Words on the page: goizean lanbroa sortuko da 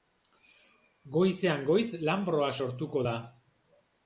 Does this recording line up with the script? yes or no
no